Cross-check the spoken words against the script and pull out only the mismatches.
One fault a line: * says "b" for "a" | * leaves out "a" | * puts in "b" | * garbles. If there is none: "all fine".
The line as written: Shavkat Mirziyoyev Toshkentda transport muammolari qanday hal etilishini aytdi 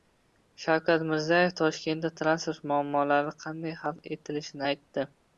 all fine